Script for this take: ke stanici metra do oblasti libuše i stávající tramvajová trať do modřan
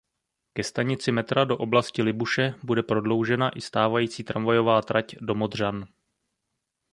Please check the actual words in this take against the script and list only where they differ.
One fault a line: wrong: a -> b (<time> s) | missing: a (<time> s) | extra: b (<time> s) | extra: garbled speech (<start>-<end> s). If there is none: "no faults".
extra: bude prodloužena (2.6 s)